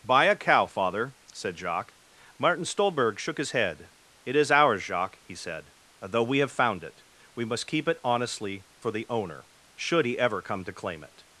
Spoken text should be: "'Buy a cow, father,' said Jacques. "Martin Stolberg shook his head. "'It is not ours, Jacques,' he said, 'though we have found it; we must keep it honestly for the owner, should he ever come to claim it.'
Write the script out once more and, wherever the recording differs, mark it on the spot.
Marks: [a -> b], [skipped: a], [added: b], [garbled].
"'Buy a cow, father,' said Jacques. "Martin Stolberg shook his head. "'It is [skipped: not] ours, Jacques,' he said, 'though we have found it; we must keep it honestly for the owner, should he ever come to claim it.'